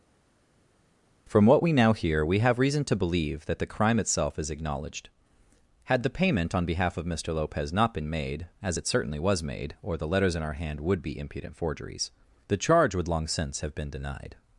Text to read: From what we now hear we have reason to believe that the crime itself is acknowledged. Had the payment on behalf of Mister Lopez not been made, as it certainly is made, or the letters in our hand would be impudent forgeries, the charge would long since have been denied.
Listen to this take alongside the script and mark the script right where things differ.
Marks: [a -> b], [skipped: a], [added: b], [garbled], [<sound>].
From what we now hear we have reason to believe that the crime itself is acknowledged. Had the payment on behalf of Mister Lopez not been made, as it certainly [is -> was] made, or the letters in our hand would be impudent forgeries, the charge would long since have been denied.